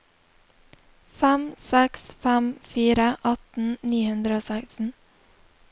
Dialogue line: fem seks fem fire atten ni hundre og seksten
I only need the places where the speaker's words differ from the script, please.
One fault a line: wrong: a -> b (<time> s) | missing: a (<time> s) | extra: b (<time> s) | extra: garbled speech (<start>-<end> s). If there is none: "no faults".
no faults